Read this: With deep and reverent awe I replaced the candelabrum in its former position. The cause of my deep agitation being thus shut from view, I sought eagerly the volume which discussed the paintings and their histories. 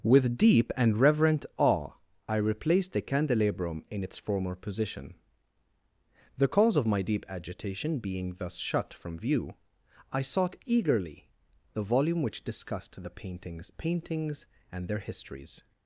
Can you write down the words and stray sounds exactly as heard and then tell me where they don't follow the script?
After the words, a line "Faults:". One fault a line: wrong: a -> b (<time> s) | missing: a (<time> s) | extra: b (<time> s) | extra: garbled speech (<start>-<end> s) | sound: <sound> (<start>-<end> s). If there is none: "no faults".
With deep and reverent awe I replaced the candelabrum in its former position. The cause of my deep agitation being thus shut from view, I sought eagerly the volume which discussed the paintings paintings and their histories.
Faults:
extra: paintings (13.8 s)